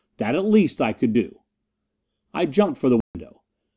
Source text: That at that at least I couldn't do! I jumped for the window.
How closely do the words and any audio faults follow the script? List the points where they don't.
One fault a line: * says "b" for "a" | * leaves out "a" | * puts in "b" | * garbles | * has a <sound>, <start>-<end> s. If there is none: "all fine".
* leaves out "that at"
* says "could" for "couldn't"
* has a dropout, 3.0-3.1 s